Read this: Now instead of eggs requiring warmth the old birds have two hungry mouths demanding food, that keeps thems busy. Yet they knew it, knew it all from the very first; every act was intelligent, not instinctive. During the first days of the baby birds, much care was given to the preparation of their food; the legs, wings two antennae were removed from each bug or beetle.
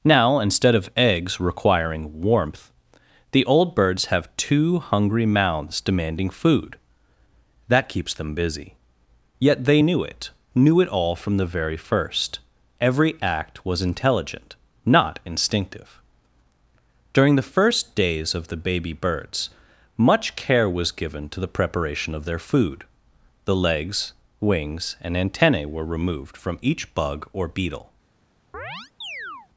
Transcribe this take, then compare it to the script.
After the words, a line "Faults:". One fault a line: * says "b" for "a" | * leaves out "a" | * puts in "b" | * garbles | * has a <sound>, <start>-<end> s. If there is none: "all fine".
Now instead of eggs requiring warmth the old birds have two hungry mouths demanding food, that keeps them busy. Yet they knew it, knew it all from the very first; every act was intelligent, not instinctive. During the first days of the baby birds, much care was given to the preparation of their food; the legs, wings and antennae were removed from each bug or beetle.
Faults:
* says "them" for "thems"
* says "and" for "two"
* has a chirp, 28.5-29.5 s